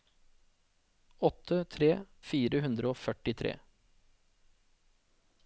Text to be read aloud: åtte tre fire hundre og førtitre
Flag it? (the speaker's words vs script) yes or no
no